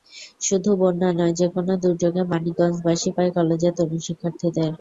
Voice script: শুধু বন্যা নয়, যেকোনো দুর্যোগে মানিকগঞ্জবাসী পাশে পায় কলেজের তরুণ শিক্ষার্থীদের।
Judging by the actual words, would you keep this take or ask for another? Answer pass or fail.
fail